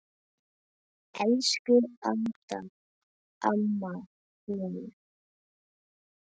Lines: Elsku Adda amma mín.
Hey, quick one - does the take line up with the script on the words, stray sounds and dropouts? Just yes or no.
yes